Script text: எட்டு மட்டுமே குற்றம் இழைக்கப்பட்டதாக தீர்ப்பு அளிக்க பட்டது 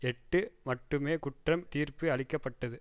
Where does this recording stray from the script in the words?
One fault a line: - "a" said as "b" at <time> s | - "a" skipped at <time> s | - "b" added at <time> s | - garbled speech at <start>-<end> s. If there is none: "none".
- "இழைக்கப்பட்டதாக" skipped at 1.6 s